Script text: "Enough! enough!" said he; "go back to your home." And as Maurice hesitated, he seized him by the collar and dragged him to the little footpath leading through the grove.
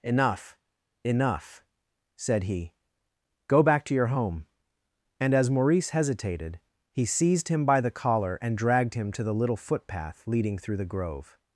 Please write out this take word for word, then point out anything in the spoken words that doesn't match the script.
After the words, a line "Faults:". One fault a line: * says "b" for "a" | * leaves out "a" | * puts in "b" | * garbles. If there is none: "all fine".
"Enough! enough!" said he; "go back to your home." And as Maurice hesitated, he seized him by the collar and dragged him to the little footpath leading through the grove.
Faults:
all fine